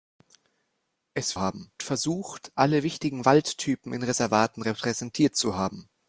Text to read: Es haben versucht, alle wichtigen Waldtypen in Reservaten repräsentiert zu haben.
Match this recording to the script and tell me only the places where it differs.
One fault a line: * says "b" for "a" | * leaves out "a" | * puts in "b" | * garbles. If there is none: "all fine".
all fine